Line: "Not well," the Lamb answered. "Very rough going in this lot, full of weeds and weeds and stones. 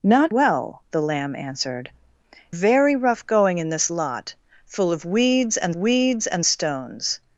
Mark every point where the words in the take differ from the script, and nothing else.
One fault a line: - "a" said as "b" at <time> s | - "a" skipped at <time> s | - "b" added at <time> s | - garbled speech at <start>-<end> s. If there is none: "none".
none